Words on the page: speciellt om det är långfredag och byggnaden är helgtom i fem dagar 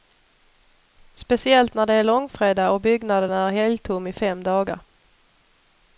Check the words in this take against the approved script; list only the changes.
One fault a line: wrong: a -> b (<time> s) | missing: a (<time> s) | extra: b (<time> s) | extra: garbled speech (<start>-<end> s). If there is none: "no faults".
wrong: om -> när (1.7 s)